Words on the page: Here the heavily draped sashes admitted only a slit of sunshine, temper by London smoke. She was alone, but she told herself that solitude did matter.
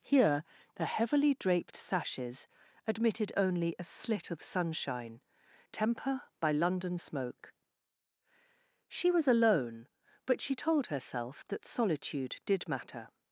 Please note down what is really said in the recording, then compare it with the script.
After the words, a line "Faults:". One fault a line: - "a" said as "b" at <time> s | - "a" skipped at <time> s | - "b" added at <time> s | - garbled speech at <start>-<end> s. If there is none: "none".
Here the heavily draped sashes admitted only a slit of sunshine, temper by London smoke. She was alone, but she told herself that solitude did matter.
Faults:
none